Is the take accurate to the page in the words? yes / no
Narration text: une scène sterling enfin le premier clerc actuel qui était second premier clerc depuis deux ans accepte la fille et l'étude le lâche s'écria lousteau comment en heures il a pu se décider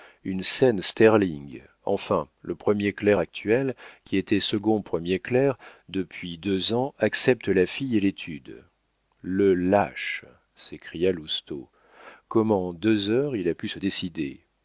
no